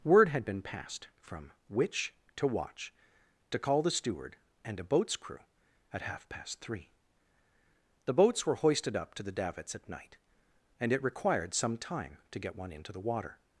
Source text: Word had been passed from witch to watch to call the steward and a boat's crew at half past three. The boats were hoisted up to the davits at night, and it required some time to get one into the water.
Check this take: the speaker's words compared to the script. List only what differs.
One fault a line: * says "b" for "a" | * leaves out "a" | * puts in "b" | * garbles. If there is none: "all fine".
all fine